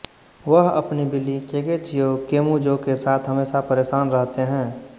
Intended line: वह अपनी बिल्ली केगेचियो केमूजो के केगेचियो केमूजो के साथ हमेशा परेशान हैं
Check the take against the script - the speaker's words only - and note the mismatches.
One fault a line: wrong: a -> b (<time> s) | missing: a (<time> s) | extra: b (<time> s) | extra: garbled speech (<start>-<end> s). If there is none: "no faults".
missing: केगेचियो केमूजो के (3.0 s)
extra: रहते (4.1 s)